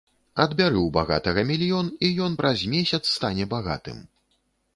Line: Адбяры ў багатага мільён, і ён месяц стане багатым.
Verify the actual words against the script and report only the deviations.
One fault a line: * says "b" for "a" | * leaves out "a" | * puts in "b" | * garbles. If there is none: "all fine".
* puts in "праз"